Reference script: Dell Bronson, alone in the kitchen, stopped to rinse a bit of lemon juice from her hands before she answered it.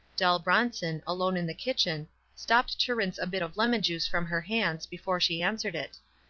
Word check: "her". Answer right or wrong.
right